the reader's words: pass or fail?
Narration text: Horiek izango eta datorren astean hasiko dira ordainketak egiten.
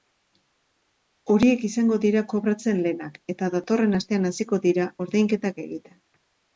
fail